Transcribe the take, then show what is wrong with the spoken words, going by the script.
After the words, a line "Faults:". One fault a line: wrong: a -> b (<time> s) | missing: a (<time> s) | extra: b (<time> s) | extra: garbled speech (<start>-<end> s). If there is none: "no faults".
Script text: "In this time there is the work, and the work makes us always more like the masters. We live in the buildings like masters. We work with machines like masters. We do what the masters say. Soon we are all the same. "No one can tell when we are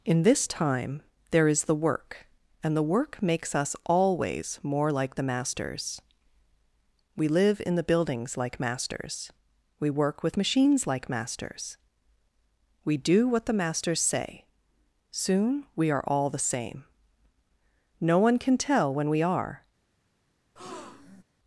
"In this time there is the work, and the work makes us always more like the masters. We live in the buildings like masters. We work with machines like masters. We do what the masters say. Soon we are all the same. "No one can tell when we are
Faults:
no faults